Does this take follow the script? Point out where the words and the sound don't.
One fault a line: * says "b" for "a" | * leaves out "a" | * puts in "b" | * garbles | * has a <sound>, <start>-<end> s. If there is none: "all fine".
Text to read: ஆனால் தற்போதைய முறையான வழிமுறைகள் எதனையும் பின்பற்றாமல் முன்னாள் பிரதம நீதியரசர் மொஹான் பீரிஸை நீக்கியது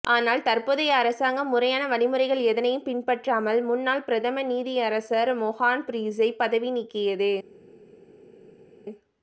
* puts in "அரசாங்கம்"
* puts in "பதவி"